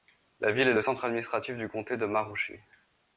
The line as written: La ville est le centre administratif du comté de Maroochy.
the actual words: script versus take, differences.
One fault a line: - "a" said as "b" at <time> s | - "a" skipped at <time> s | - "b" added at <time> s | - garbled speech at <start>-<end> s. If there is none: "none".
none